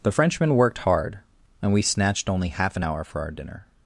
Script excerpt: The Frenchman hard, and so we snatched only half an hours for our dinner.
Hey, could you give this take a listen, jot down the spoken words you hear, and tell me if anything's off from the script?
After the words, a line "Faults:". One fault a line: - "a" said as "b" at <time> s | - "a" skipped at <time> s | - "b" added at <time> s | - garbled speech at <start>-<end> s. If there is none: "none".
The Frenchman worked hard, and we snatched only half an hour for our dinner.
Faults:
- "worked" added at 0.6 s
- "so" skipped at 1.7 s
- "hours" said as "hour" at 2.8 s